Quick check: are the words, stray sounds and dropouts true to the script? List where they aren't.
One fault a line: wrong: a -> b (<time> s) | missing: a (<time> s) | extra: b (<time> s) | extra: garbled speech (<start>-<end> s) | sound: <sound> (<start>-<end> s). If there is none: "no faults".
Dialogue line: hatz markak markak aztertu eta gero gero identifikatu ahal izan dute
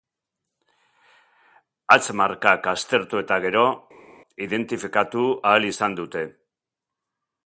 missing: markak (2.7 s)
missing: gero (3.7 s)